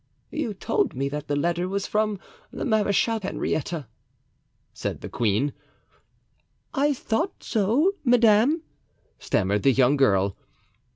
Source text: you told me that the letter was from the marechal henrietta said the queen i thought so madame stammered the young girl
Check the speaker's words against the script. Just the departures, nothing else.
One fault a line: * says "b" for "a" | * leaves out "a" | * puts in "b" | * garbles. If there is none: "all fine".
all fine